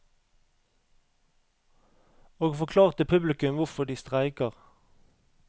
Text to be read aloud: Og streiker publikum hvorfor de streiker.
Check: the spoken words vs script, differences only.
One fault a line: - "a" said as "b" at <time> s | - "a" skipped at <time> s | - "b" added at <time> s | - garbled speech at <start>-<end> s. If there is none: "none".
- "streiker" said as "forklarte" at 2.5 s